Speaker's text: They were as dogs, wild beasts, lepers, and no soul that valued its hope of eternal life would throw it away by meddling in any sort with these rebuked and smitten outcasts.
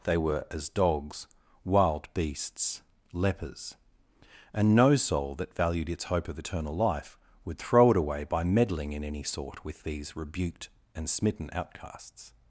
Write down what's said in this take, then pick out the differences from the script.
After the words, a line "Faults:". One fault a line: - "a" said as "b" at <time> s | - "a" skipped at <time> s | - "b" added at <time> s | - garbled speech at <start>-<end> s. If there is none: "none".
They were as dogs, wild beasts, lepers, and no soul that valued its hope of eternal life would throw it away by meddling in any sort with these rebuked and smitten outcasts.
Faults:
none